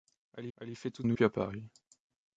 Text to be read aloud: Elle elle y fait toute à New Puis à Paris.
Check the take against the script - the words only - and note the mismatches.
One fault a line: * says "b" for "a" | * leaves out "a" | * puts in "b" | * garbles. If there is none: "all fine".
all fine